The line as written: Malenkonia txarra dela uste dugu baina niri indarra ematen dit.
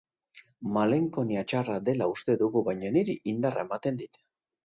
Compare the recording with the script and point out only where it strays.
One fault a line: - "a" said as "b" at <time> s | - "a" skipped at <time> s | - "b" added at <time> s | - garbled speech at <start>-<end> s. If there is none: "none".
none